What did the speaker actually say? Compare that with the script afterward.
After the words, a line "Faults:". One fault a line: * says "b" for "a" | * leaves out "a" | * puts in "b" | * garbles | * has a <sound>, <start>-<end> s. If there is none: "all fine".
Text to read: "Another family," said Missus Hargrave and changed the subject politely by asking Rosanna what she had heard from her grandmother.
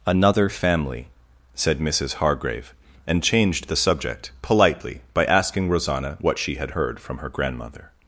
"Another family," said Missus Hargrave and changed the subject politely by asking Rosanna what she had heard from her grandmother.
Faults:
all fine